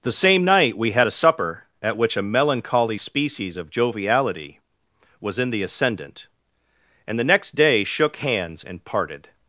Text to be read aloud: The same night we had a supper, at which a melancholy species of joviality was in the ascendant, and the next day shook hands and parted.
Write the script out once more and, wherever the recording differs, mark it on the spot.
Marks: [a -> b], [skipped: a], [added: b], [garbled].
The same night we had a supper, at which a melancholy species of joviality was in the ascendant, and the next day shook hands and parted.